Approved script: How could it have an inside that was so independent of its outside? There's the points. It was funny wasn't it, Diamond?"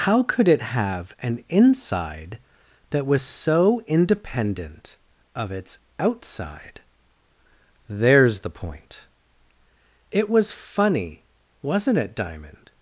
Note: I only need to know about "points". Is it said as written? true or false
false